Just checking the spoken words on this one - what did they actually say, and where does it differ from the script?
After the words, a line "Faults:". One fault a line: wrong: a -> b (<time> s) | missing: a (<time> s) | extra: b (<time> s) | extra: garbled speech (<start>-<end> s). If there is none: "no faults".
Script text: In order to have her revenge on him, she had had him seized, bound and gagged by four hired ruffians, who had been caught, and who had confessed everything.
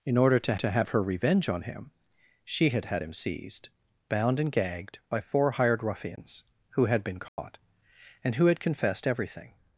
In order to to have her revenge on him, she had had him seized, bound and gagged by four hired ruffians, who had been caught, and who had confessed everything.
Faults:
extra: to (0.5 s)